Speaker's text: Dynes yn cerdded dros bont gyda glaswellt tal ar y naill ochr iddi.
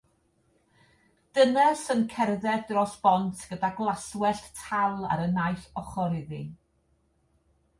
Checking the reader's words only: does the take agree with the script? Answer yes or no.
yes